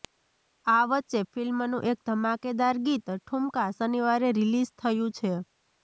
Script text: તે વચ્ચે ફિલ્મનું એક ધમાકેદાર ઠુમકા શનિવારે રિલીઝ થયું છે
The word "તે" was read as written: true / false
false